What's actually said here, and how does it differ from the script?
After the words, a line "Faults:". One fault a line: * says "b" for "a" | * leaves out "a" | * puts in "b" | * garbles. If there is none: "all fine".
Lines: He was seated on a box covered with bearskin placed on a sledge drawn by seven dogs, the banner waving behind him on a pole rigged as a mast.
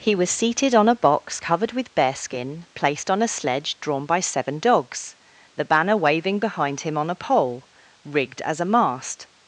He was seated on a box covered with bearskin placed on a sledge drawn by seven dogs, the banner waving behind him on a pole rigged as a mast.
Faults:
all fine